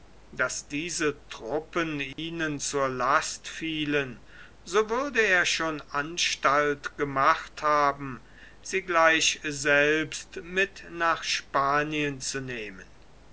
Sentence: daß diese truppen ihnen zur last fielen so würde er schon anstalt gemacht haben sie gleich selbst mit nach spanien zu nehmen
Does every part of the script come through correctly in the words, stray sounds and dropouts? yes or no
no